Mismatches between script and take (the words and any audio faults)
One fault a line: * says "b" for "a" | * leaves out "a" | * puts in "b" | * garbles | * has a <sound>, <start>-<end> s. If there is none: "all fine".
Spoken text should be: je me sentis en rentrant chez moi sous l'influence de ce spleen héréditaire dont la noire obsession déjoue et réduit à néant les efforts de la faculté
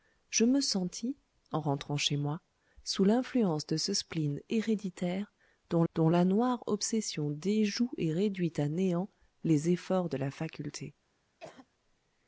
* puts in "dont"
* has a cough, 11.4-11.7 s